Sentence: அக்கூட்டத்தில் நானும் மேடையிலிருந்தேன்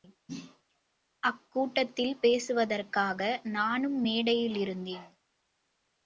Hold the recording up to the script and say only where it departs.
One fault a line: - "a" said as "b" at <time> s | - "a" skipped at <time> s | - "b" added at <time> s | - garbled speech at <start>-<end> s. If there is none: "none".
- "பேசுவதற்காக" added at 2.2 s